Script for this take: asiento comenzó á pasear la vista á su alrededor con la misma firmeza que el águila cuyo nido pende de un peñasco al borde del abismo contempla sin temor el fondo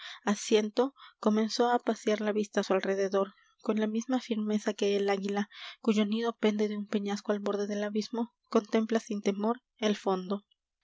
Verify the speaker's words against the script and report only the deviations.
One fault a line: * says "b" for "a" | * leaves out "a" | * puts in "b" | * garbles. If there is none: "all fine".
all fine